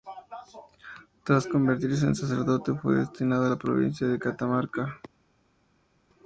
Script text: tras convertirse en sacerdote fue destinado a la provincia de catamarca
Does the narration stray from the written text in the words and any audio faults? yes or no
no